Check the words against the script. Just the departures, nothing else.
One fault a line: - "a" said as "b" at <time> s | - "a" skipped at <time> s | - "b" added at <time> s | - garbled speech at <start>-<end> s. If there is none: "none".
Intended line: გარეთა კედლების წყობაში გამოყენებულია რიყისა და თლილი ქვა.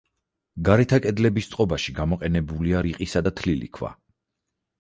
none